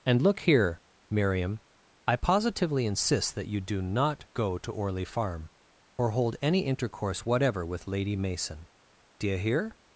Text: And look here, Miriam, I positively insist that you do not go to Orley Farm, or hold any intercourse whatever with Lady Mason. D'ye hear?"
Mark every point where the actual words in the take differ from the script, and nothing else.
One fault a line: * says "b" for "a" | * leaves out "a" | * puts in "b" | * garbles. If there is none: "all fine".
all fine